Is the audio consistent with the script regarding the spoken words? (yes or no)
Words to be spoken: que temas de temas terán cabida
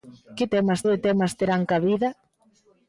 yes